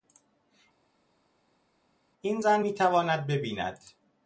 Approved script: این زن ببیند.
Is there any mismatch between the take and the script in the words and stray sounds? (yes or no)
yes